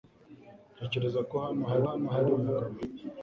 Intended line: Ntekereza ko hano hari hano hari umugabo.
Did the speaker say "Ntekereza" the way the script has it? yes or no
yes